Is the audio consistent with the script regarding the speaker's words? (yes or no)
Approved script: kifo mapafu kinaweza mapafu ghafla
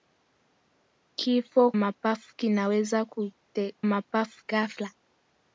yes